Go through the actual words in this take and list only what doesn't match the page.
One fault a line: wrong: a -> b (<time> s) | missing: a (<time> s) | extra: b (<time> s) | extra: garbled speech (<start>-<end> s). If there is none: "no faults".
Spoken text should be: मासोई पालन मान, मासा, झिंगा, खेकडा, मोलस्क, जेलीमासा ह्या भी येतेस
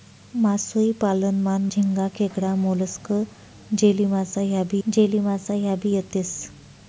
missing: मासा (1.6 s)
extra: जेलीमासा ह्या भी (4.9 s)